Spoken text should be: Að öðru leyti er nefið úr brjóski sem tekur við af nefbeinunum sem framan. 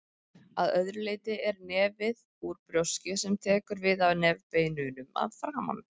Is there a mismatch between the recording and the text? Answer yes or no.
yes